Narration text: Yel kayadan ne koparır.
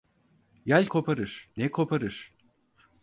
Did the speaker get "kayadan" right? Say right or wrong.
wrong